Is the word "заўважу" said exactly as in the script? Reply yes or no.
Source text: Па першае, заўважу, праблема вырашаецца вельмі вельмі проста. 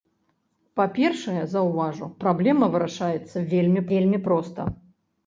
yes